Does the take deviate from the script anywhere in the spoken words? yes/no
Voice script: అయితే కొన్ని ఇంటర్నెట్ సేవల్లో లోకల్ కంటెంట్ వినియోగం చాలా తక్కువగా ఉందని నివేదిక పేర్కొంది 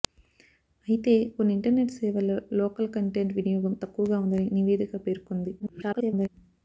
yes